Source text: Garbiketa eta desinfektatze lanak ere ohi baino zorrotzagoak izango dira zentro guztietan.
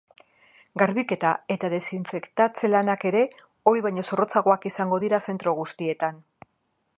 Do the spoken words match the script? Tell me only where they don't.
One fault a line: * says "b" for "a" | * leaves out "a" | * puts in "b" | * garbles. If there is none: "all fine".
all fine